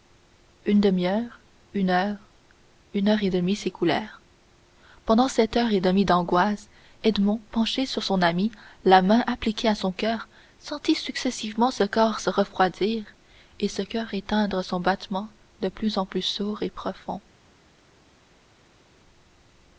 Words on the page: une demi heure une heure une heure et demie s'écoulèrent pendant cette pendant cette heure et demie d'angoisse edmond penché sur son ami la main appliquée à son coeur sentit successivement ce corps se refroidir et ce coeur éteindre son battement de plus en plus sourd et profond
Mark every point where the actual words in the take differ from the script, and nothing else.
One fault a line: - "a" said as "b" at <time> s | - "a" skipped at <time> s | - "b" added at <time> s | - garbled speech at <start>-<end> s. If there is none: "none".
- "pendant cette" skipped at 5.6 s